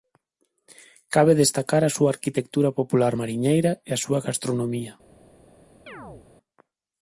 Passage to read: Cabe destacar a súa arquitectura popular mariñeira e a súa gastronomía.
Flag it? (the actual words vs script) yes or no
no